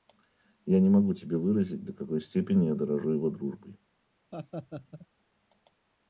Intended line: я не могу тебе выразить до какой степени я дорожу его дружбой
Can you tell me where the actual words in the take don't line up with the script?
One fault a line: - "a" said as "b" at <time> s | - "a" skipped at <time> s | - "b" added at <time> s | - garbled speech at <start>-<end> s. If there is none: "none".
none